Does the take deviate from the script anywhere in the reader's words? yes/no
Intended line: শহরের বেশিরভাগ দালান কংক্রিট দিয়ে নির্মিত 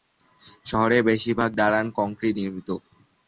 yes